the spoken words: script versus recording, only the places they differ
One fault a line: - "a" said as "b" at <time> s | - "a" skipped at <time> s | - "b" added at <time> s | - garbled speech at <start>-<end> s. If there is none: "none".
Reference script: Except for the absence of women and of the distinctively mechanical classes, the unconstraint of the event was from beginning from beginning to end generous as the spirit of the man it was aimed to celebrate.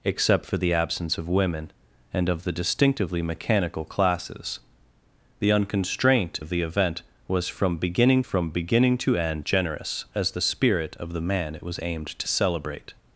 none